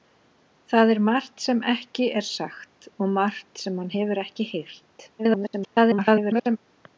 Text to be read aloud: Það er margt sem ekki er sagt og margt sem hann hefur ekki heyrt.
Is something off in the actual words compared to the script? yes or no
yes